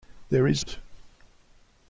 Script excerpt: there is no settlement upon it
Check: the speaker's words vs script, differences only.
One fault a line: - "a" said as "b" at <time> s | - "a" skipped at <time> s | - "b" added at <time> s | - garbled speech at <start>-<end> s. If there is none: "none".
- "no settlement upon" skipped at 0.7 s